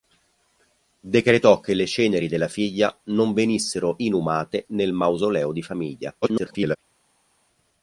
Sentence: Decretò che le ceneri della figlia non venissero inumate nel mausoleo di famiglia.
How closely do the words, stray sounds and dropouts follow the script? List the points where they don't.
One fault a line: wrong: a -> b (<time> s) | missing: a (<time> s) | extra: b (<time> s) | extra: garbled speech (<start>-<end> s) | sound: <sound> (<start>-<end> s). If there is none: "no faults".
extra: garbled speech (6.2-6.8 s)